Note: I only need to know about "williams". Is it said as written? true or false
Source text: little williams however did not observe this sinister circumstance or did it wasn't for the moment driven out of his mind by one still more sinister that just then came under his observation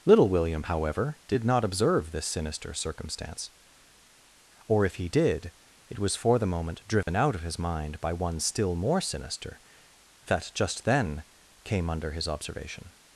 false